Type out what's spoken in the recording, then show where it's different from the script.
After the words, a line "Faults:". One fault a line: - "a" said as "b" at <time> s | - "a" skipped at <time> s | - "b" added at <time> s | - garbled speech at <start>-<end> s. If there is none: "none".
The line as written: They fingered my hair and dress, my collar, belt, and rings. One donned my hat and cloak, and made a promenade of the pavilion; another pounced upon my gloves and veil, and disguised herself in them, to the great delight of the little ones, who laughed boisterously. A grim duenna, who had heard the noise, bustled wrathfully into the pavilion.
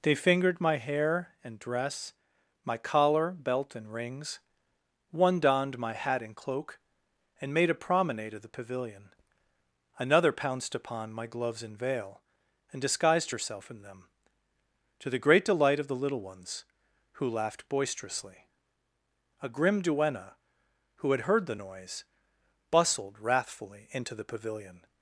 They fingered my hair and dress, my collar, belt, and rings. One donned my hat and cloak, and made a promenade of the pavilion; another pounced upon my gloves and veil, and disguised herself in them, to the great delight of the little ones, who laughed boisterously. A grim duenna, who had heard the noise, bustled wrathfully into the pavilion.
Faults:
none